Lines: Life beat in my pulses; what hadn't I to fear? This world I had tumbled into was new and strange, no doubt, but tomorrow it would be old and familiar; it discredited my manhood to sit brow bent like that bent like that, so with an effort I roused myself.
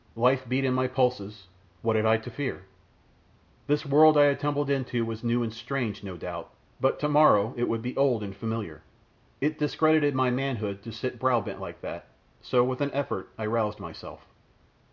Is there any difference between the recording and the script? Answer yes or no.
yes